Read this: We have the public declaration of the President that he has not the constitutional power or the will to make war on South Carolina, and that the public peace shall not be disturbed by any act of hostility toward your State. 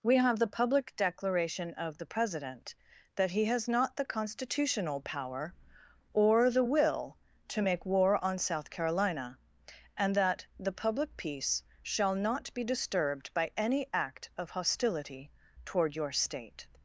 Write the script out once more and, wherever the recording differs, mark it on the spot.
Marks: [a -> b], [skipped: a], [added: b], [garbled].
We have the public declaration of the President that he has not the constitutional power or the will to make war on South Carolina, and that the public peace shall not be disturbed by any act of hostility toward your State.